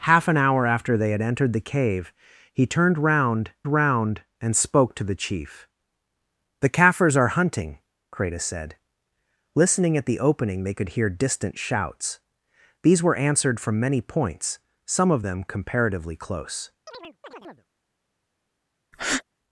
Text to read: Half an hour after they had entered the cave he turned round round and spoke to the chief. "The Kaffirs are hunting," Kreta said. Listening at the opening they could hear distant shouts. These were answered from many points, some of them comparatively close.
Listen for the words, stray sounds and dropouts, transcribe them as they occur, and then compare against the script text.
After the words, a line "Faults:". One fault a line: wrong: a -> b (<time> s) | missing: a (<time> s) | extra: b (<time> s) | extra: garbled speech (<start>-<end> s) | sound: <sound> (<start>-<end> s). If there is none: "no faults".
Half an hour after they had entered the cave he turned round round and spoke to the chief. "The Kaffirs are hunting," Kreta said. Listening at the opening they could hear distant shouts. These were answered from many points, some of them comparatively close.
Faults:
sound: chirp (16.9-17.7 s)
sound: breath (18.9-19.2 s)